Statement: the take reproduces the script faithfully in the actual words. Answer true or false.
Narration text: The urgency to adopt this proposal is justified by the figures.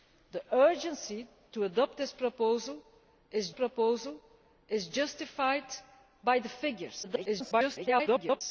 false